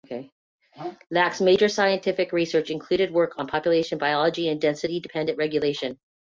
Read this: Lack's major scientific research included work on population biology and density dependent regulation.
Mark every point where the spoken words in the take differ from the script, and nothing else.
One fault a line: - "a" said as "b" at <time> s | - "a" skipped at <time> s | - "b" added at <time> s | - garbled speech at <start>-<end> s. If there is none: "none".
none